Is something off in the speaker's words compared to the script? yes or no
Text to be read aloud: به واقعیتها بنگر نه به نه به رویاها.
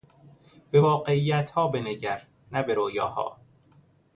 yes